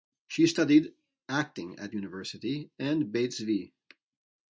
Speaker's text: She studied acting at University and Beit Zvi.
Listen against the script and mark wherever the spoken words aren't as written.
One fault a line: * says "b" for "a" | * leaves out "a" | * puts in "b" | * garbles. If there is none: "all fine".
all fine